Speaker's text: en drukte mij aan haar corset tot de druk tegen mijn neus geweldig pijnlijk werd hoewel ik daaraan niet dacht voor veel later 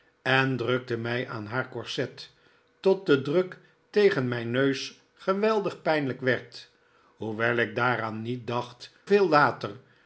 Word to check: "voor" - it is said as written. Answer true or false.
false